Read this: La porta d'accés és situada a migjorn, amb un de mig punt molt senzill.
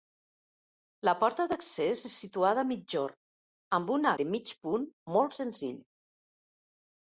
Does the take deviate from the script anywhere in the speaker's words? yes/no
no